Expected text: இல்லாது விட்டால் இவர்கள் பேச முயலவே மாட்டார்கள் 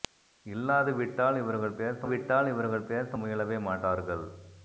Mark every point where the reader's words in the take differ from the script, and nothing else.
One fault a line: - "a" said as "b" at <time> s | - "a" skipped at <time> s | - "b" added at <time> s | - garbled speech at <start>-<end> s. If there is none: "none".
- "விட்டால் இவர்கள் பேச" added at 2.1 s